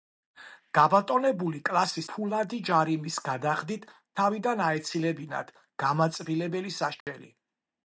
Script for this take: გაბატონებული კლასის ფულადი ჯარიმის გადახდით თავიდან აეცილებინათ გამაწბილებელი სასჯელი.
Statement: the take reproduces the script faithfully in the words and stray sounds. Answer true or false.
false